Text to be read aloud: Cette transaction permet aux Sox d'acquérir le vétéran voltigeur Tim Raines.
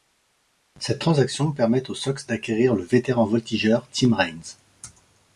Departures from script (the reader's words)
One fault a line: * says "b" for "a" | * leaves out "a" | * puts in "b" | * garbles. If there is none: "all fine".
all fine